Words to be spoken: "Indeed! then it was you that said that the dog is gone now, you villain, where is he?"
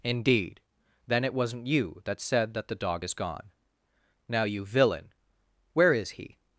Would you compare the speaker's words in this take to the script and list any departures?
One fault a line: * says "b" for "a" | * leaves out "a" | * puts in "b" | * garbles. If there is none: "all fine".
* says "wasn't" for "was"